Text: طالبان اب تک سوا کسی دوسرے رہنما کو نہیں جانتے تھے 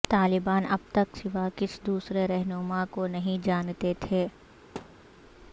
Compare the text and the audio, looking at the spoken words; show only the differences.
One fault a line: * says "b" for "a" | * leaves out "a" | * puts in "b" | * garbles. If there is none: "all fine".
all fine